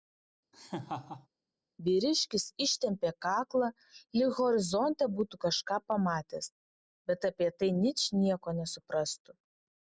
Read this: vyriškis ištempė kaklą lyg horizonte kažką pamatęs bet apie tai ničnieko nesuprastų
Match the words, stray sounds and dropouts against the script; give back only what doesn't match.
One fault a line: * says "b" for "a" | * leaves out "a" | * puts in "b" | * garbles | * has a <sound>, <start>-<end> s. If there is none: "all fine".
* has a laugh, 0.5-1.3 s
* puts in "būtų"